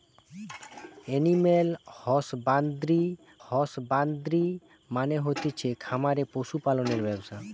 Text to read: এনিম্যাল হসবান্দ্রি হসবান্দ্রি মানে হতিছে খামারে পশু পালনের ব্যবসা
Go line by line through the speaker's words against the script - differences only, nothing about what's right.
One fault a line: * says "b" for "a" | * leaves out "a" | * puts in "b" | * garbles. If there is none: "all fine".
all fine